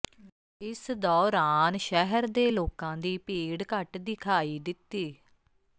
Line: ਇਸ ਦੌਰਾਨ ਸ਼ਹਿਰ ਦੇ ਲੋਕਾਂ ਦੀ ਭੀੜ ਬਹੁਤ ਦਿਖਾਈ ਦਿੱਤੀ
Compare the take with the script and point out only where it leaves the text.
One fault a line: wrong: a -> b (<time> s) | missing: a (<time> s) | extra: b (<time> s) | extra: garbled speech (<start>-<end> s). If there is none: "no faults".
wrong: ਬਹੁਤ -> ਘੱਟ (3.7 s)